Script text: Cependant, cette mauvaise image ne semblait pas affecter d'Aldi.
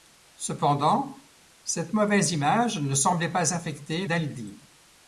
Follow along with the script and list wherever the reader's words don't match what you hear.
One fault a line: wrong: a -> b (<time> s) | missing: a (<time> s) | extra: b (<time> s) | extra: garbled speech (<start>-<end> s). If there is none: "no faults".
no faults